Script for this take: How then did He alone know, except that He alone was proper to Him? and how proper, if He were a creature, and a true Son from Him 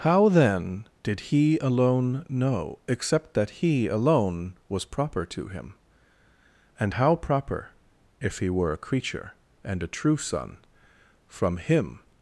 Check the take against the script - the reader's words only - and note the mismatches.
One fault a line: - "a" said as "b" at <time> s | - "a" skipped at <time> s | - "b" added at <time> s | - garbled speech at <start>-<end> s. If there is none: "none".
none